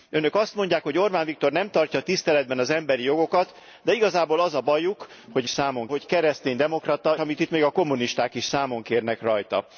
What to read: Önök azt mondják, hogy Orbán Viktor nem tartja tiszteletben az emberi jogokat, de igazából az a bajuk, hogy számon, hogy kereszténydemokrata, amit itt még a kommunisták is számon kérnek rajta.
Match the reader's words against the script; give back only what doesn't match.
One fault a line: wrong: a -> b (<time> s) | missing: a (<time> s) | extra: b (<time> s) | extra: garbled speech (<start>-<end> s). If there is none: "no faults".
no faults